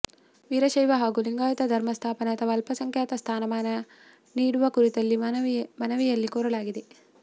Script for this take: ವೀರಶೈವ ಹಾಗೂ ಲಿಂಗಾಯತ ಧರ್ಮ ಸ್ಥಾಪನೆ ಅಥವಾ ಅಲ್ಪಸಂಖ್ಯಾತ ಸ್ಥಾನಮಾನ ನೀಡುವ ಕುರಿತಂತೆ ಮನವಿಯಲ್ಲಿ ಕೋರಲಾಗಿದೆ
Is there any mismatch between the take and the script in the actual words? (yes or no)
no